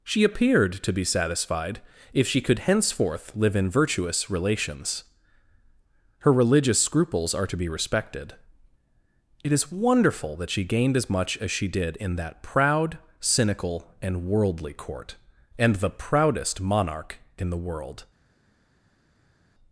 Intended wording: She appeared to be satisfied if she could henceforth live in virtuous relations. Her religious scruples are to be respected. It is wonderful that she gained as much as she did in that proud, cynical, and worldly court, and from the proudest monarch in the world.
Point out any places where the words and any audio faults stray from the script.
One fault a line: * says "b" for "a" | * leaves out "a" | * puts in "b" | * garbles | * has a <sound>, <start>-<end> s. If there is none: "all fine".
* leaves out "from"